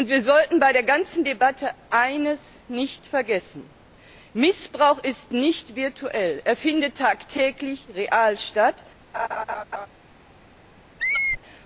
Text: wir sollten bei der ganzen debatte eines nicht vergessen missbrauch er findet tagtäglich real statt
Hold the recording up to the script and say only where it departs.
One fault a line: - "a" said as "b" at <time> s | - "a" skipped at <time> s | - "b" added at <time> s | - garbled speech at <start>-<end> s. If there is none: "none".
- "ist nicht virtuell" added at 5.0 s